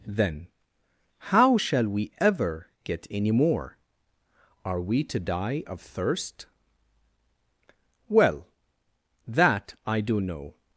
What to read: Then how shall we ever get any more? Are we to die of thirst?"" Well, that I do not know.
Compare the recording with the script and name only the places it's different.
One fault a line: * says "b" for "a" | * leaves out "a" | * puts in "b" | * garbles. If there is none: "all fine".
* leaves out "not"